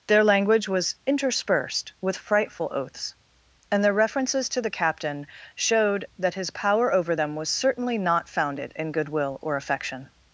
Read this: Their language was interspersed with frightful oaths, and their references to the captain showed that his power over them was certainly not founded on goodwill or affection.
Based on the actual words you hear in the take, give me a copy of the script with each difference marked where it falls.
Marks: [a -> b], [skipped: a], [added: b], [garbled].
Their language was interspersed with frightful oaths, and their references to the captain showed that his power over them was certainly not founded [on -> in] goodwill or affection.